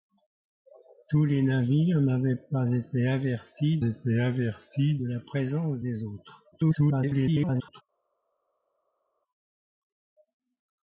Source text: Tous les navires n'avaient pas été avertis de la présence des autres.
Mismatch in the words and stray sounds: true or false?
true